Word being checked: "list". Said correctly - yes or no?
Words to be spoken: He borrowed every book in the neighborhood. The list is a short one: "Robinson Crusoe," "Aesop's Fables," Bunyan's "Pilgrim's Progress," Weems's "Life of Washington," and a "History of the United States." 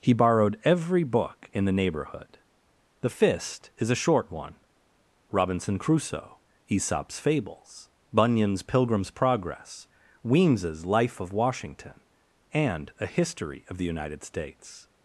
no